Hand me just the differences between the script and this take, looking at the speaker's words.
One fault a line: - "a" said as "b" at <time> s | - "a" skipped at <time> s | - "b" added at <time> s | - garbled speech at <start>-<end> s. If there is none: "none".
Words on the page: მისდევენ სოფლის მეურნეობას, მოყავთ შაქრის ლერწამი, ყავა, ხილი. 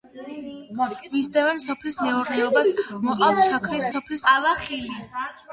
- "ლერწამი" said as "სოფლის" at 3.9 s